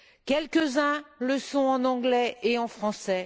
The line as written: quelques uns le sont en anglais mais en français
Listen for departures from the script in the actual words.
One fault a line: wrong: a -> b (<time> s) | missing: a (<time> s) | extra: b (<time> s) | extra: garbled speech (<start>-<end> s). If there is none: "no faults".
wrong: mais -> et (2.4 s)